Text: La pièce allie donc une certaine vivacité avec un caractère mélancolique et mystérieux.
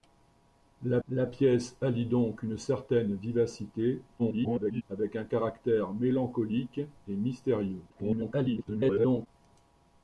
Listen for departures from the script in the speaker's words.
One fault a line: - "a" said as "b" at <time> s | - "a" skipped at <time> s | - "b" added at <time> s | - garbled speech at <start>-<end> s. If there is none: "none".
- "la" added at 1.1 s
- garbled speech at 4.2-4.8 s
- garbled speech at 7.9-9.3 s